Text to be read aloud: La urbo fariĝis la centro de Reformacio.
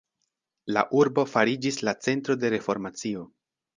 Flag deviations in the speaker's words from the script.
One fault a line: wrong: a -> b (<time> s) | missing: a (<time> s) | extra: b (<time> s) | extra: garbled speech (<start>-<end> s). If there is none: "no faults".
no faults